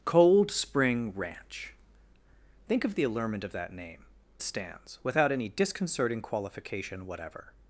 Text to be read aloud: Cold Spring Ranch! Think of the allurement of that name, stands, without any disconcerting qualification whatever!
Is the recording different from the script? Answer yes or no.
no